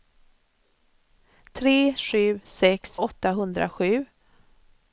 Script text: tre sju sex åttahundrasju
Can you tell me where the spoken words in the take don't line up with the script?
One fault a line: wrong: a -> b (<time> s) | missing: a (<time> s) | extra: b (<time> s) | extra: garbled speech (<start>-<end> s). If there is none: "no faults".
no faults